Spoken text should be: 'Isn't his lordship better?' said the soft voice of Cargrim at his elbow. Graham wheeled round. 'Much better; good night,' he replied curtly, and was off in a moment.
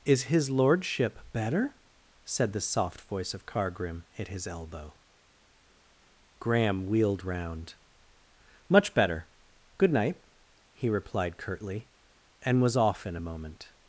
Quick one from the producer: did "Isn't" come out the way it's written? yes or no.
no